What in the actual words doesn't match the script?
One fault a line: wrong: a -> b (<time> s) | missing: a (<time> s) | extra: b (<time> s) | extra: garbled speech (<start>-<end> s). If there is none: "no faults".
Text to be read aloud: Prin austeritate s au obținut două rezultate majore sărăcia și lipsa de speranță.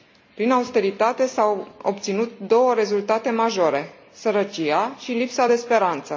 no faults